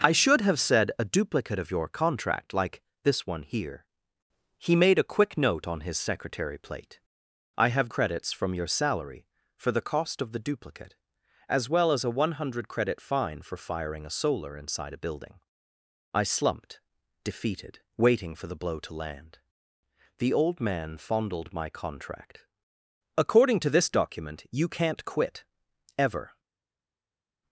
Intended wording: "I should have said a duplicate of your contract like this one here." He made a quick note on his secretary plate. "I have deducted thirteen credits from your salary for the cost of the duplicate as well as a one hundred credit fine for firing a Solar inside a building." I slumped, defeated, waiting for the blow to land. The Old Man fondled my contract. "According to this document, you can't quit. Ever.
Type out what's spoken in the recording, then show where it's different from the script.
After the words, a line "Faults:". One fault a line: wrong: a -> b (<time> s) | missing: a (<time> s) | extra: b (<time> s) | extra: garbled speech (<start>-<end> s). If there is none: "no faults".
"I should have said a duplicate of your contract like this one here." He made a quick note on his secretary plate. "I have credits from your salary for the cost of the duplicate as well as a one hundred credit fine for firing a Solar inside a building." I slumped, defeated, waiting for the blow to land. The Old Man fondled my contract. "According to this document, you can't quit. Ever.
Faults:
missing: deducted thirteen (7.9 s)